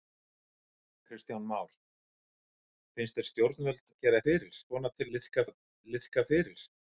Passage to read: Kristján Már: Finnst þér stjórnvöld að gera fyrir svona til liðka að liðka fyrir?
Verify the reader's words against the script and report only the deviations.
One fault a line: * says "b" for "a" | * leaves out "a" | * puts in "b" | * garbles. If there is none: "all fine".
all fine